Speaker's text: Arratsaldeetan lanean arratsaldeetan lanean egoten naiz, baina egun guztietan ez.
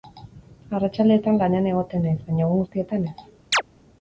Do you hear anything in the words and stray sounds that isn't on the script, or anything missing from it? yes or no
yes